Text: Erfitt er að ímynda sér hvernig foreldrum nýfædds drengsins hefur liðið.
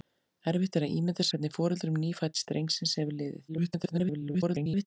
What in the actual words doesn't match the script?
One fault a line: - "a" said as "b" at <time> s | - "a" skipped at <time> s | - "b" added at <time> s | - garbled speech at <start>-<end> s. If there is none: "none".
- "sér" skipped at 1.3 s
- garbled speech at 3.5-4.9 s